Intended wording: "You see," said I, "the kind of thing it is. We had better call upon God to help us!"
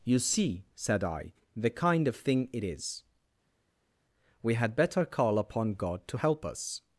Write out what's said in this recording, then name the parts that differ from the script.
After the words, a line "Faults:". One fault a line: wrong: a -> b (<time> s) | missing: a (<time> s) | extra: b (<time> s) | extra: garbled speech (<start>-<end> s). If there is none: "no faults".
"You see," said I, "the kind of thing it is. We had better call upon God to help us!"
Faults:
no faults